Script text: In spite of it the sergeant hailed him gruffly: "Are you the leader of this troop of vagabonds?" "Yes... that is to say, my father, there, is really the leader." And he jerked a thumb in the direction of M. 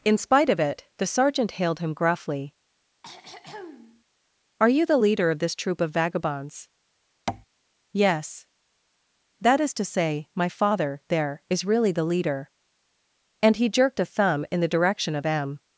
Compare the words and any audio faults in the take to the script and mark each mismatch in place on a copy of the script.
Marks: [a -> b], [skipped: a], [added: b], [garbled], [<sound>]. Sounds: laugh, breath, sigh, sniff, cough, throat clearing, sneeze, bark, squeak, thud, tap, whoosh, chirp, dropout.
In spite of it the sergeant hailed him gruffly: [throat clearing] "Are you the leader of this troop of vagabonds?" [tap] "Yes... that is to say, my father, there, is really the leader." And he jerked a thumb in the direction of M.